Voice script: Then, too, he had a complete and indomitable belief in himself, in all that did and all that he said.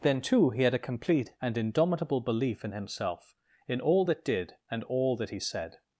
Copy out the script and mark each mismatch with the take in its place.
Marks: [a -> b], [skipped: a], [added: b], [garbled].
Then, too, he had a complete and indomitable belief in himself, in all that did and all that he said.